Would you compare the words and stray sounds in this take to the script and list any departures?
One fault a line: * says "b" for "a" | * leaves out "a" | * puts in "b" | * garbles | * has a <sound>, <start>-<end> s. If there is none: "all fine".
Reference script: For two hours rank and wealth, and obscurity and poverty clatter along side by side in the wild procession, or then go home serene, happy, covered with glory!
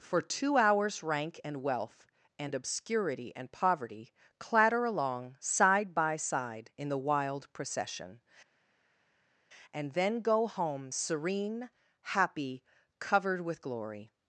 * says "and" for "or"